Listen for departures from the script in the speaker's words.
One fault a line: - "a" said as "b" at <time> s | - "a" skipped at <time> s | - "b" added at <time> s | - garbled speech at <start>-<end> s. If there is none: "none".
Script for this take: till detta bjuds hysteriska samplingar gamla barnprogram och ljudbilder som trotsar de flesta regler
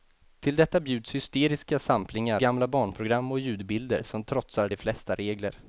none